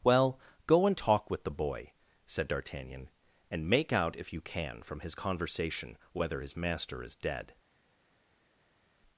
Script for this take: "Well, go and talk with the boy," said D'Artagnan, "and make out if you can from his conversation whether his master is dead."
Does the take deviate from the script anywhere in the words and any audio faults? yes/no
no